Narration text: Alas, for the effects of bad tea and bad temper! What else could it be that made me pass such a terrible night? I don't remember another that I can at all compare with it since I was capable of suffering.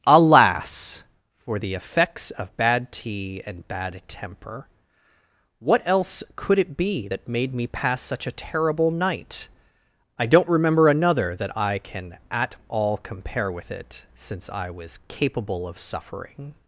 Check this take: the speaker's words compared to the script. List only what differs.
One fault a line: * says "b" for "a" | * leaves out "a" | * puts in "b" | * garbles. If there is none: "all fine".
all fine